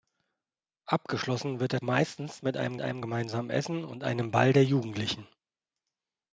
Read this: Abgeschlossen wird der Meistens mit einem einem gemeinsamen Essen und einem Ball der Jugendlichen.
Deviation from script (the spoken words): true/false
false